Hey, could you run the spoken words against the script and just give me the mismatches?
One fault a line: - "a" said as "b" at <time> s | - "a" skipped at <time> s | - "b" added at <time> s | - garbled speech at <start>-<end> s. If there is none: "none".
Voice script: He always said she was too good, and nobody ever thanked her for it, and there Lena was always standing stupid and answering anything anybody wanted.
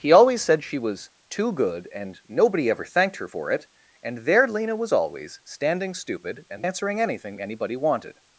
none